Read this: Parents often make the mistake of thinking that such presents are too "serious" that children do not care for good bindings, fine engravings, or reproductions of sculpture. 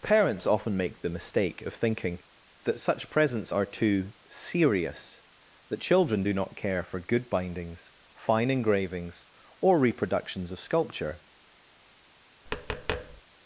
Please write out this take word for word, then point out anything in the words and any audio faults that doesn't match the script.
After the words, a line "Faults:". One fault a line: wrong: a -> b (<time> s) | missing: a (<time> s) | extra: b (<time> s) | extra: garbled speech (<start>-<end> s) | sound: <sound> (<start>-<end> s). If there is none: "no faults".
Parents often make the mistake of thinking that such presents are too "serious" that children do not care for good bindings, fine engravings, or reproductions of sculpture.
Faults:
sound: tap (12.5-13.2 s)